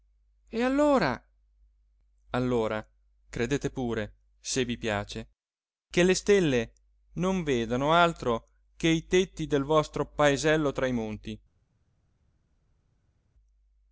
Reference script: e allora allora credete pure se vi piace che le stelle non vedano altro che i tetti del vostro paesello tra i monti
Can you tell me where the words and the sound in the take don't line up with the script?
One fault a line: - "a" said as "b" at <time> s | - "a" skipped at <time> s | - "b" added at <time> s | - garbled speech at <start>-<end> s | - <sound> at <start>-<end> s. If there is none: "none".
none